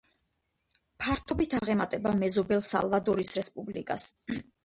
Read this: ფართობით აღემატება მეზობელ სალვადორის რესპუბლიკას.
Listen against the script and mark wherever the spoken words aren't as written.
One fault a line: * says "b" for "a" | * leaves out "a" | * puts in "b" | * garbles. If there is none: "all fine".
all fine